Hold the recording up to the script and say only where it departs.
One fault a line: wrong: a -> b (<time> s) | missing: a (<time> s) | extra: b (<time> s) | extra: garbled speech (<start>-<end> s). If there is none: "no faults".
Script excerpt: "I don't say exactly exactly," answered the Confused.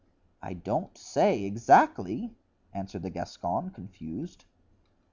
missing: exactly (2.3 s)
extra: Gascon (3.1 s)